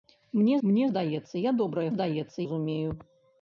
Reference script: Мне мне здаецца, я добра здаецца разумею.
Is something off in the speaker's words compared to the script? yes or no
no